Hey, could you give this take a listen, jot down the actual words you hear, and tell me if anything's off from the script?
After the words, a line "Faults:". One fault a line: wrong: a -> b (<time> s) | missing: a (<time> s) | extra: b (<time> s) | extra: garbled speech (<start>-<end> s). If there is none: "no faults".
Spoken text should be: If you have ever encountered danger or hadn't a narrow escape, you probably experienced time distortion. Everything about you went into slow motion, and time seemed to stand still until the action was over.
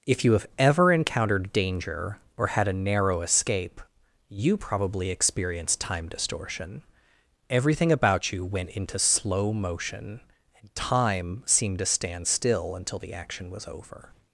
If you have ever encountered danger or had a narrow escape, you probably experienced time distortion. Everything about you went into slow motion, and time seemed to stand still until the action was over.
Faults:
wrong: hadn't -> had (2.5 s)